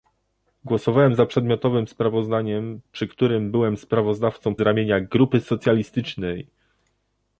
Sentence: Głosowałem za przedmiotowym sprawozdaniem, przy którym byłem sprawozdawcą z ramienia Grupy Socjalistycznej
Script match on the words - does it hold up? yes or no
yes